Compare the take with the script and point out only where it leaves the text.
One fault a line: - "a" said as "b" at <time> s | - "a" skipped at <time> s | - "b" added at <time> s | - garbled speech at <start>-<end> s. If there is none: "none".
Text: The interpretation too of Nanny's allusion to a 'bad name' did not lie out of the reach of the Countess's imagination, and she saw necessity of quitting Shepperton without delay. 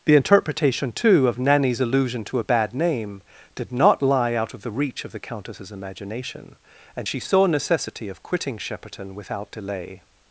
none